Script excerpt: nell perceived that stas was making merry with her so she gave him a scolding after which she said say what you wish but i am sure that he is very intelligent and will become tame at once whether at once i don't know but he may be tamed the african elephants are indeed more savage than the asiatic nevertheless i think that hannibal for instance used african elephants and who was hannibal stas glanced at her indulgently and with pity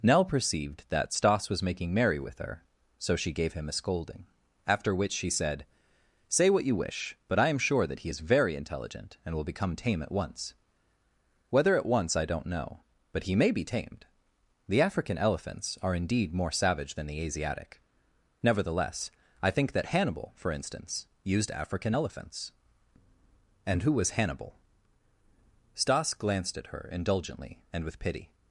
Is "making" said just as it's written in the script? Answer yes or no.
yes